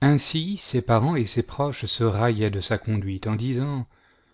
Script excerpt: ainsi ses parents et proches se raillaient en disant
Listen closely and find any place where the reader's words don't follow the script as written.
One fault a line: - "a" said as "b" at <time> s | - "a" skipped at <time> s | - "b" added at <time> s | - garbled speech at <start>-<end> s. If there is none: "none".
- "ses" added at 1.3 s
- "de sa conduite" added at 2.5 s